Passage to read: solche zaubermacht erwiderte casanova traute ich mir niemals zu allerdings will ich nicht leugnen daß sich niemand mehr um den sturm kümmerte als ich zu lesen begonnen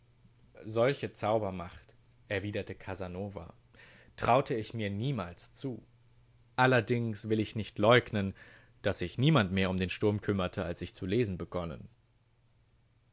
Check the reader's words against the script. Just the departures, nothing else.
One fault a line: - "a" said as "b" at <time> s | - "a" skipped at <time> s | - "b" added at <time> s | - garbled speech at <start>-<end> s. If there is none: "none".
none